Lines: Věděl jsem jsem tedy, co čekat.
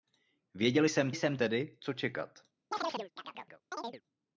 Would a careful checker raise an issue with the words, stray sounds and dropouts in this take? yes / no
yes